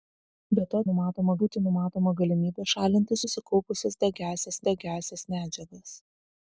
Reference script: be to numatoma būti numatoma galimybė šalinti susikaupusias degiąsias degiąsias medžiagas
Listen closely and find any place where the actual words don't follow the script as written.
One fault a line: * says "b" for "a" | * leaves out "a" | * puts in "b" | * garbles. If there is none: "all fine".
all fine